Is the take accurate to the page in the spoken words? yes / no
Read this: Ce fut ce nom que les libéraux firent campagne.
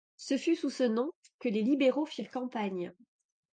no